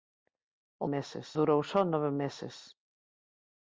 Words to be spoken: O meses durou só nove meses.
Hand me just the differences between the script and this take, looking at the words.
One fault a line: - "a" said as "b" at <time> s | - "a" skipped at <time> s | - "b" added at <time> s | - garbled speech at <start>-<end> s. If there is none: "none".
none